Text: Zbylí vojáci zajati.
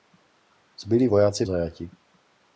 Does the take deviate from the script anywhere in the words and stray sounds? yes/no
no